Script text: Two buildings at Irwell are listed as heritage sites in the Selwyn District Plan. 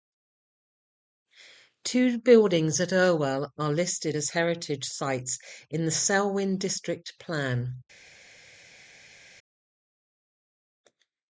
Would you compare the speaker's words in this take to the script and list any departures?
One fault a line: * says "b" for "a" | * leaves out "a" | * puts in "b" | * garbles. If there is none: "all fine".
all fine